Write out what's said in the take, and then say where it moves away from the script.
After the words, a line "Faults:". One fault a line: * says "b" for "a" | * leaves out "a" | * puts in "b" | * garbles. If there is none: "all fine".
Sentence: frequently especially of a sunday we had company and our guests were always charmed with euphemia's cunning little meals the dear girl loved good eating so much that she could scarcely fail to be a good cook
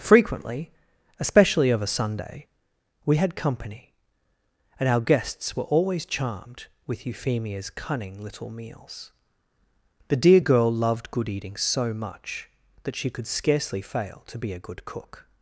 frequently especially of a sunday we had company and our guests were always charmed with euphemia's cunning little meals the dear girl loved good eating so much that she could scarcely fail to be a good cook
Faults:
all fine